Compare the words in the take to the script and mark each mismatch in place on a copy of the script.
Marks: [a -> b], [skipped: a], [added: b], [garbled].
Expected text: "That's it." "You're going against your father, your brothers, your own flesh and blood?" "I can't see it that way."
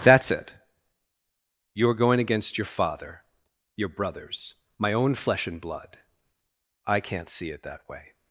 "That's it." "You're going against your father, your brothers, [your -> my] own flesh and blood?" "I can't see it that way."